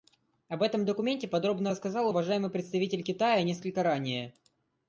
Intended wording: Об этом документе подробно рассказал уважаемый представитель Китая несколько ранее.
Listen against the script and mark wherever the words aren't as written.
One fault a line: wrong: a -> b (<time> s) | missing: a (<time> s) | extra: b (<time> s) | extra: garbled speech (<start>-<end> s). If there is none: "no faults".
no faults